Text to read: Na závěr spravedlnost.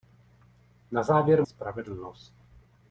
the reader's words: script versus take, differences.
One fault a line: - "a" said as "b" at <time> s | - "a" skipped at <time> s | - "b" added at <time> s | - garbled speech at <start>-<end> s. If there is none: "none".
none